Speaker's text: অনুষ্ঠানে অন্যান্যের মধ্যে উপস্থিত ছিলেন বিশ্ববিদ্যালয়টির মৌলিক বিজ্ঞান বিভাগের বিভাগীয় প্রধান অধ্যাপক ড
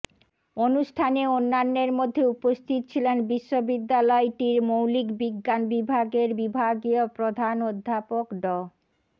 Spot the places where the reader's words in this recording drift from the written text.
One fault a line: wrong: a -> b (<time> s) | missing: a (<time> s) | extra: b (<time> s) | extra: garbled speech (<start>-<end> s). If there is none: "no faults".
no faults